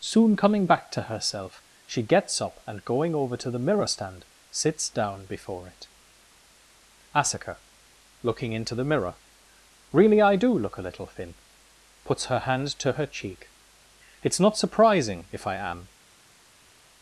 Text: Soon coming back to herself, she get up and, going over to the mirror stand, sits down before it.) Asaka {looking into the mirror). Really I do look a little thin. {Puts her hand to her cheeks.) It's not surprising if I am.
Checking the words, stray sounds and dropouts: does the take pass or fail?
fail